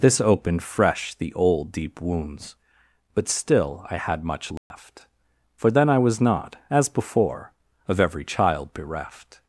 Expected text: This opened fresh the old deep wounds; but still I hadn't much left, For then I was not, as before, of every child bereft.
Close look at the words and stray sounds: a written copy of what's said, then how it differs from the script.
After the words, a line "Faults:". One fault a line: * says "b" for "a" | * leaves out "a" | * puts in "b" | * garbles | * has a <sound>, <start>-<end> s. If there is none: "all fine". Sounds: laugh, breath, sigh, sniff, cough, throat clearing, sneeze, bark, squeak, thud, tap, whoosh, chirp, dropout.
This opened fresh the old deep wounds; but still I had much left, For then I was not, as before, of every child bereft.
Faults:
* says "had" for "hadn't"
* has a dropout, 4.6-4.7 s